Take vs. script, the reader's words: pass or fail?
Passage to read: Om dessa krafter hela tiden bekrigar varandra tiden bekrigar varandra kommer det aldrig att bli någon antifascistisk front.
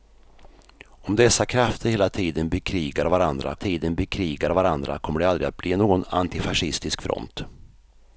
pass